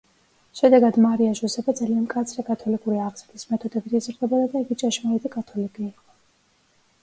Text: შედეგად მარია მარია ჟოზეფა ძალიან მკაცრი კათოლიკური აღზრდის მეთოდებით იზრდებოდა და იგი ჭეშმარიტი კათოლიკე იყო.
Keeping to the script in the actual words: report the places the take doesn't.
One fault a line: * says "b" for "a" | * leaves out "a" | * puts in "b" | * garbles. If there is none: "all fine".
* leaves out "მარია"